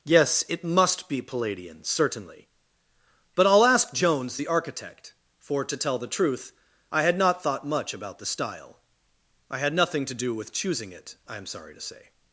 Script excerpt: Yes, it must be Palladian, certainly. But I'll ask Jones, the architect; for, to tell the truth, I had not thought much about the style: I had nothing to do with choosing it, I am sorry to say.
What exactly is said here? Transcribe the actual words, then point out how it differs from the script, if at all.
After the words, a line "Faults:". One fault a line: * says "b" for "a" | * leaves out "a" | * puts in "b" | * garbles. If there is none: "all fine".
Yes, it must be Palladian, certainly. But I'll ask Jones, the architect; for, to tell the truth, I had not thought much about the style: I had nothing to do with choosing it, I am sorry to say.
Faults:
all fine